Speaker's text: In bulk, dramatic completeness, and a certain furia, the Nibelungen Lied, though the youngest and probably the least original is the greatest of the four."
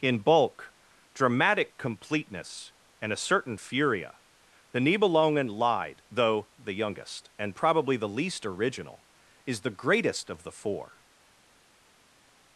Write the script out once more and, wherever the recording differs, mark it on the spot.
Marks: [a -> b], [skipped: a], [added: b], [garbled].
In bulk, dramatic completeness, and a certain furia, the Nibelungen Lied, though the youngest and probably the least original is the greatest of the four."